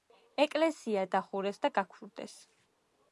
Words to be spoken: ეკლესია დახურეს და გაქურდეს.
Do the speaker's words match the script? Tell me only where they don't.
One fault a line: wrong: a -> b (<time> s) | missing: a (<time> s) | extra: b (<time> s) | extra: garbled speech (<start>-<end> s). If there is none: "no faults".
no faults